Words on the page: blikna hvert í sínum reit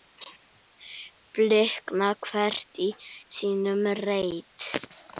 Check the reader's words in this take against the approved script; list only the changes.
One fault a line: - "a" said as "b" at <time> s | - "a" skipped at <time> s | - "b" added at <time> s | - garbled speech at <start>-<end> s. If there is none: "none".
none